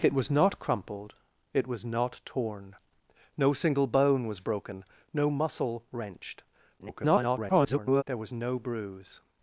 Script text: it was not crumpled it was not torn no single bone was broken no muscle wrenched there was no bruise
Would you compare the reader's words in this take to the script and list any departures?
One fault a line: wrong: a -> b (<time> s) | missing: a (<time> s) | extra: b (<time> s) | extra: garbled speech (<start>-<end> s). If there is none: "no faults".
extra: garbled speech (6.8-8.0 s)